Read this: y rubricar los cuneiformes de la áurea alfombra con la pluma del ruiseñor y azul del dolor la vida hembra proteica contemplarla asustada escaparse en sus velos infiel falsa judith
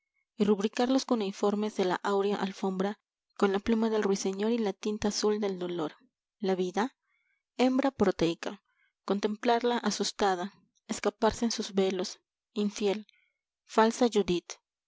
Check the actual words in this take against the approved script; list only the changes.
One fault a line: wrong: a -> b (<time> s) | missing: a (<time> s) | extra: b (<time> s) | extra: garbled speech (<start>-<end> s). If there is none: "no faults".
extra: la tinta (4.6 s)